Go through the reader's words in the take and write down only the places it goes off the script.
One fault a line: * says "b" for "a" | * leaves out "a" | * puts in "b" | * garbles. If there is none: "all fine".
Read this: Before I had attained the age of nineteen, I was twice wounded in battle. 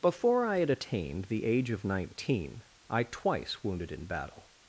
* leaves out "was"